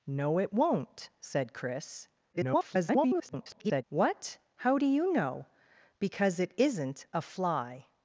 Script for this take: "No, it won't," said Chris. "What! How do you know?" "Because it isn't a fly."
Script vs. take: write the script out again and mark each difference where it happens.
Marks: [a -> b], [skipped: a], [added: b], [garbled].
"No, it won't," said Chris. [garbled] "What! How do you know?" "Because it isn't a fly."